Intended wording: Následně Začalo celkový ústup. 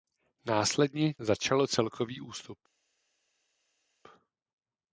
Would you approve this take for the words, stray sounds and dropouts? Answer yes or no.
yes